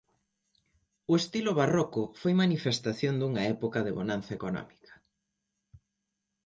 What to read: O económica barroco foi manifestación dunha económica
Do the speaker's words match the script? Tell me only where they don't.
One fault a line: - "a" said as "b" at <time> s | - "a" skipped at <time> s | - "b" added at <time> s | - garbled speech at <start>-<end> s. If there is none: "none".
- "económica" said as "estilo" at 1.2 s
- "época de bonanza" added at 3.5 s